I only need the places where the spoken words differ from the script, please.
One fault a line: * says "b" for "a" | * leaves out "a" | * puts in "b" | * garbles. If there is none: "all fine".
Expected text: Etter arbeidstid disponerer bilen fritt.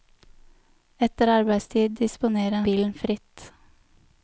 all fine